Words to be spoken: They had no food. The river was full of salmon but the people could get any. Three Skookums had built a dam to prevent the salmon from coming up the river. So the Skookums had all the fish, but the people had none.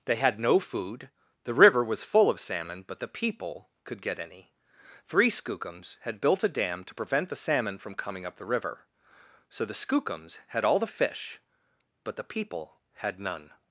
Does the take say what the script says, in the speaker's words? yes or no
yes